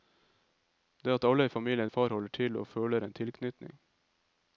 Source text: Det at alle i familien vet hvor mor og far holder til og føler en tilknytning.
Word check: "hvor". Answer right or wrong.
wrong